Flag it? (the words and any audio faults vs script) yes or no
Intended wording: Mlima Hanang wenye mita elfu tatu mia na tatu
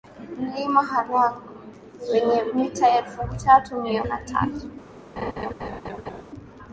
yes